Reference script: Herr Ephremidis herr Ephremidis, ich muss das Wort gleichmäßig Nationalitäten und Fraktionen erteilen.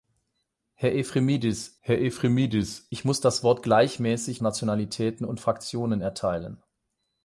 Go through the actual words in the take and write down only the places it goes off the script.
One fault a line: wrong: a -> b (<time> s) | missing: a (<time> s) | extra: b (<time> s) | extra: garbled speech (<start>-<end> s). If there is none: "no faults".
no faults